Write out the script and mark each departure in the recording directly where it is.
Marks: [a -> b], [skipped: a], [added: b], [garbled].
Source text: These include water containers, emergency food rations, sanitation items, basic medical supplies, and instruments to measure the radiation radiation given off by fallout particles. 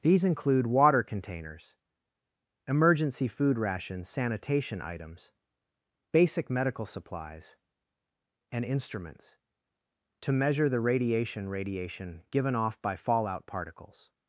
These include water containers, emergency food rations, sanitation items, basic medical supplies, and instruments to measure the radiation radiation given off by fallout particles.